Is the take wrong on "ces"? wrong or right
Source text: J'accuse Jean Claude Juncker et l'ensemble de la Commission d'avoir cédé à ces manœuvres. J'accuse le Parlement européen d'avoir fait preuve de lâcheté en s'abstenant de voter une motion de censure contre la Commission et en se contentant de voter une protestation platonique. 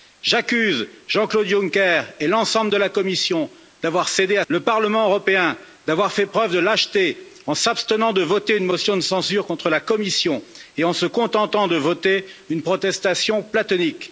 wrong